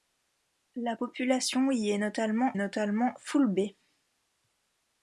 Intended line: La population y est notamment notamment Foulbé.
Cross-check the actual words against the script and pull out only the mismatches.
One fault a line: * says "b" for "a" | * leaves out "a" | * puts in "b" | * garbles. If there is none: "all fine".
all fine